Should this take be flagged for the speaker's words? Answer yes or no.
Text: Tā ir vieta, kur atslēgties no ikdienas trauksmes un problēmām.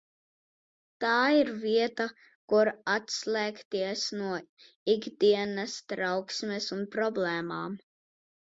no